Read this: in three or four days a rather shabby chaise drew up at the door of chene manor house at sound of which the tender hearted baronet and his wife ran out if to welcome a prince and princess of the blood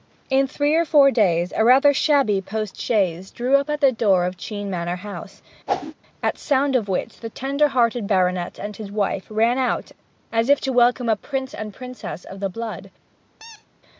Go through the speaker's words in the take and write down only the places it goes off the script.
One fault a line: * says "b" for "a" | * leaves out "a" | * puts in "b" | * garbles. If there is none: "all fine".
* puts in "post"
* puts in "as"